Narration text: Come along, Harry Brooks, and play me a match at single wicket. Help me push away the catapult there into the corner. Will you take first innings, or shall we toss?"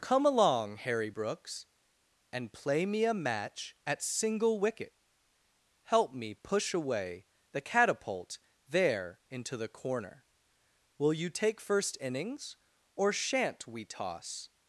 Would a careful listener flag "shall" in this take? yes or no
yes